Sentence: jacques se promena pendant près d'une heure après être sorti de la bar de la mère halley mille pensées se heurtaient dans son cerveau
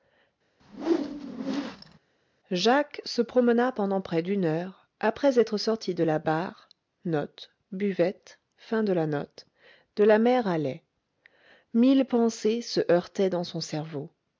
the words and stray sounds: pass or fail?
fail